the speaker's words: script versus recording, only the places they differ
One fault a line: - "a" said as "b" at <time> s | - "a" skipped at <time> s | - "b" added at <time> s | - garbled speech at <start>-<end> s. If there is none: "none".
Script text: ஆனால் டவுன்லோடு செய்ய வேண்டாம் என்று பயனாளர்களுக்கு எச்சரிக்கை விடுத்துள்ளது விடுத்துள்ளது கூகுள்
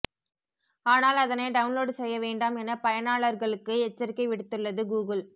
- "அதனை" added at 1.2 s
- "என்று" said as "என" at 2.6 s
- "விடுத்துள்ளது" skipped at 4.8 s